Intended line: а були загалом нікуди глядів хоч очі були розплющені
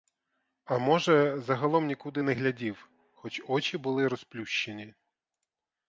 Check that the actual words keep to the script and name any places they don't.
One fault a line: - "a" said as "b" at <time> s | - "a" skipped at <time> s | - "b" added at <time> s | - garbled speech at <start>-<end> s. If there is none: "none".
- "були" said as "може" at 0.8 s
- "не" added at 2.2 s